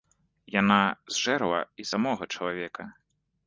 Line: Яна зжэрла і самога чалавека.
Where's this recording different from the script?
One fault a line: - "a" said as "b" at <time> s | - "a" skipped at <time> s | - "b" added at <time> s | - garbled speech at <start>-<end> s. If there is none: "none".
none